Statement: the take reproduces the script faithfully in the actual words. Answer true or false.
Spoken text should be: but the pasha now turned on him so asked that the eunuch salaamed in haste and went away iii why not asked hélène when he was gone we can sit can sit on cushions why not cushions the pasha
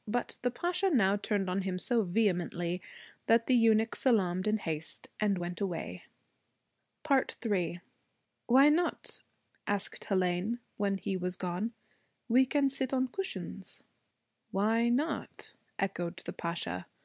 false